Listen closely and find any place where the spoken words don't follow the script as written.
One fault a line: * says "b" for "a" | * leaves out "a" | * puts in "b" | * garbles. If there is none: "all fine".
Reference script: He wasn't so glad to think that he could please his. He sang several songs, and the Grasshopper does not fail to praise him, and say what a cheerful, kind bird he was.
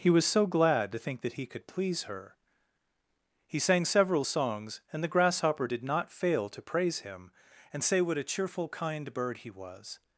* says "was" for "wasn't"
* says "her" for "his"
* says "did" for "does"